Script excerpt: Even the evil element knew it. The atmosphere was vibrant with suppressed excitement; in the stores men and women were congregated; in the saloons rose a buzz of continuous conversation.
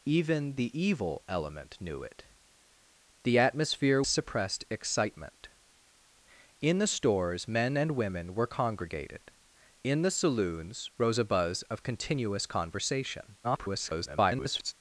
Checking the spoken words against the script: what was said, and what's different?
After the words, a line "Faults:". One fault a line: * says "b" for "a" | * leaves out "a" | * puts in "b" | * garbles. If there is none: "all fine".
Even the evil element knew it. The atmosphere suppressed excitement; in the stores men and women were congregated; in the saloons rose a buzz of continuous conversation. [garbled]
Faults:
* leaves out "was vibrant with"
* garbles